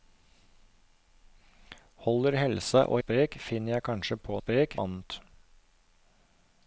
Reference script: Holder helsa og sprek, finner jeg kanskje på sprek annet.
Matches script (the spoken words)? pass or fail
pass